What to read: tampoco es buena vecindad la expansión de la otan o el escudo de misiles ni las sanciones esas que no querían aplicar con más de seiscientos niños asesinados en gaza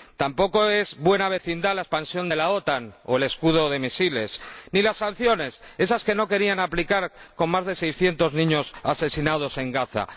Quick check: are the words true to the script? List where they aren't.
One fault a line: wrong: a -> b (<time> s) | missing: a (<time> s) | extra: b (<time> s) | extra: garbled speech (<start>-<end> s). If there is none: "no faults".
no faults